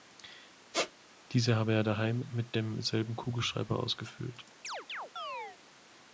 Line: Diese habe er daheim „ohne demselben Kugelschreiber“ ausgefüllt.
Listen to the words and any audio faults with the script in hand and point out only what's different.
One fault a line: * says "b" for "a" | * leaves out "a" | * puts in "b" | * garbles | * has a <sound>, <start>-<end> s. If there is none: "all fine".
* has a squeak, 0.7-0.9 s
* says "mit" for "ohne"
* has a chirp, 4.6-5.6 s